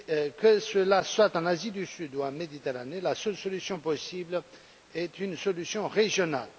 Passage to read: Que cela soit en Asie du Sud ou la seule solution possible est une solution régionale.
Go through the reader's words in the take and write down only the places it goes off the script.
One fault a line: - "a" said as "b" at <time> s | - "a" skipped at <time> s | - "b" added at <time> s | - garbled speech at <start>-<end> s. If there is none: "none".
- "en Méditerranée" added at 2.2 s